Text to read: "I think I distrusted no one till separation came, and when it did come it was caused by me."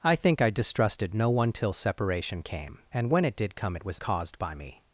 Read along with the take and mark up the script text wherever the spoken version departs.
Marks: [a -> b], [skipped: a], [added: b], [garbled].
"I think I distrusted no one till separation came, and when it did come it was caused by me."